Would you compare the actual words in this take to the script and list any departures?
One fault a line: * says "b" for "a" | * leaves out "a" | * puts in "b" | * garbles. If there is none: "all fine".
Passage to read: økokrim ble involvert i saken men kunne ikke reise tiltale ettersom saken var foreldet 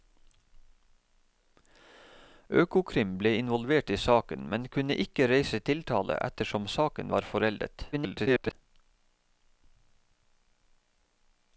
* garbles